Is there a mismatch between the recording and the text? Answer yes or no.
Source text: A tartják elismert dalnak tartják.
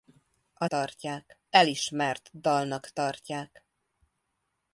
no